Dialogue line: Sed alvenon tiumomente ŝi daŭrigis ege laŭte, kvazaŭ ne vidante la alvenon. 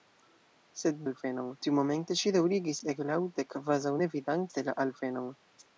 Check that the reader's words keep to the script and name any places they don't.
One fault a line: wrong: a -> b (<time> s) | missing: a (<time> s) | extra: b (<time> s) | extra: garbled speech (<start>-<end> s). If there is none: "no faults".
no faults